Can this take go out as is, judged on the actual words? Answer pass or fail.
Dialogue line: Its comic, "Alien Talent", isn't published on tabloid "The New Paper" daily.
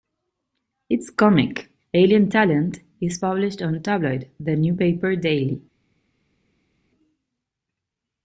fail